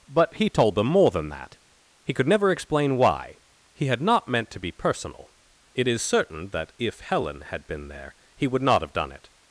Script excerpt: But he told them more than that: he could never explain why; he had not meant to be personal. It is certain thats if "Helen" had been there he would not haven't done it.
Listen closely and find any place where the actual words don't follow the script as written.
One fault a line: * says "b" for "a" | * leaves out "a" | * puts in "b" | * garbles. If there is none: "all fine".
* says "that" for "thats"
* says "have" for "haven't"